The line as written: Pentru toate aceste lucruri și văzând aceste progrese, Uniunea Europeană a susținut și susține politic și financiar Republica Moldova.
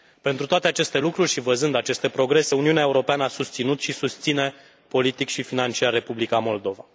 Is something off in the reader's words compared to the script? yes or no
no